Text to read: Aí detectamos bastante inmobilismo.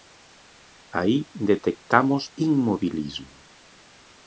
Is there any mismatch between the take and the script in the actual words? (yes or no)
yes